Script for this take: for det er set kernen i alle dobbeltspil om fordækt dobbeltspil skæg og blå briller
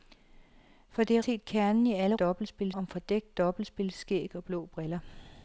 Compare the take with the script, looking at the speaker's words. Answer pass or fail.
pass